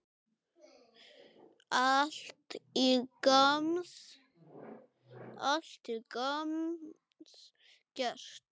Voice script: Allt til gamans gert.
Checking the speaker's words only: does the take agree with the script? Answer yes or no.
yes